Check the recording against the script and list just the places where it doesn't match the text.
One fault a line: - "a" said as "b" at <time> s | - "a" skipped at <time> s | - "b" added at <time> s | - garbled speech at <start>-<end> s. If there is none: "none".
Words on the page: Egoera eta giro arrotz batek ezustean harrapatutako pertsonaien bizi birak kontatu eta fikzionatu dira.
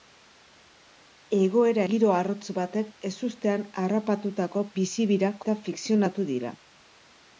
- "eta" skipped at 1.8 s
- "pertsonaien" skipped at 4.6 s
- "kontatu" skipped at 5.4 s